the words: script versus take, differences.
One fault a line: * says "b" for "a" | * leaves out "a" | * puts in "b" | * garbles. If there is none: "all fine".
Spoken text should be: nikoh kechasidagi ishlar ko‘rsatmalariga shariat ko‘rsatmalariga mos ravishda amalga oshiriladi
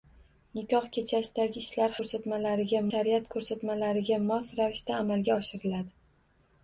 all fine